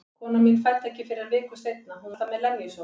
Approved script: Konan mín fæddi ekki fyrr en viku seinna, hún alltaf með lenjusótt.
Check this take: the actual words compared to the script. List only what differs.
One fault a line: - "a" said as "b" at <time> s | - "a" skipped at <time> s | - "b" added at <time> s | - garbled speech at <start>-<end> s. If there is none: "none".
none